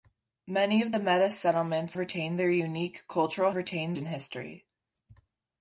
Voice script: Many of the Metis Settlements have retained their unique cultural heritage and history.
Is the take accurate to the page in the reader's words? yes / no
no